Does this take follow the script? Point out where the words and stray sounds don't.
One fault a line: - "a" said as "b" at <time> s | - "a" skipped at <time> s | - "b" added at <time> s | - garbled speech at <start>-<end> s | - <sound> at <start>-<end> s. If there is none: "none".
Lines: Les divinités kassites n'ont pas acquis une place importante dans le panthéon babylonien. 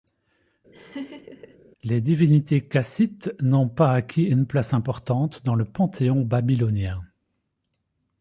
- laugh at 0.7-1.6 s